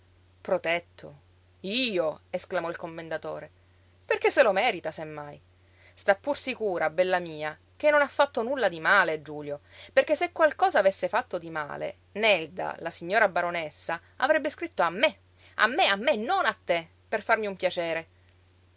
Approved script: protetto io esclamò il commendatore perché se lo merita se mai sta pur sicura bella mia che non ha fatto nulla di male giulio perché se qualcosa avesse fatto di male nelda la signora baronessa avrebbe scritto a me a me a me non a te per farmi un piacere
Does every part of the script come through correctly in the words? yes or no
yes